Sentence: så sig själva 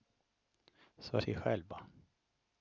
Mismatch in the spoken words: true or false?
false